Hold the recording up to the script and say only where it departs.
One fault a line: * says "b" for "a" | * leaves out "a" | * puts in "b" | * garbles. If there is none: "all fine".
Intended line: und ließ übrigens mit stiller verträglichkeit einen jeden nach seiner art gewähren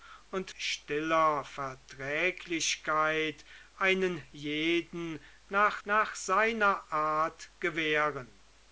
* leaves out "ließ übrigens mit"
* puts in "nach"